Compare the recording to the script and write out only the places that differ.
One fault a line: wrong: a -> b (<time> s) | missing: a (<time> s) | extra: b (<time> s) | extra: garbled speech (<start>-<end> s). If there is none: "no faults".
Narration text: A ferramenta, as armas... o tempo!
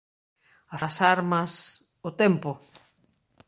missing: ferramenta (0.8 s)